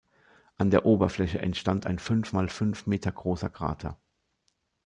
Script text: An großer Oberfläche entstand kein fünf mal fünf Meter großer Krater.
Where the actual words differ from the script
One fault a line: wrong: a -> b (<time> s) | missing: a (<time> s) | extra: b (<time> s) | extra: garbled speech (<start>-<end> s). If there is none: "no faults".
wrong: großer -> der (0.7 s)
wrong: kein -> ein (1.8 s)